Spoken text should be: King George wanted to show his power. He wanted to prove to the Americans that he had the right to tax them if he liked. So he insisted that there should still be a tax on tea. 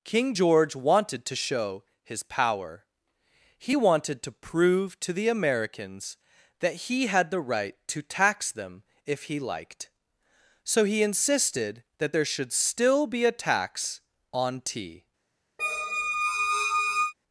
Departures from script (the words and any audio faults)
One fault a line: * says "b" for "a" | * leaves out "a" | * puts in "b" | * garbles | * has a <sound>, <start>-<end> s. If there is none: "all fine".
* has a squeak, 15.6-17.1 s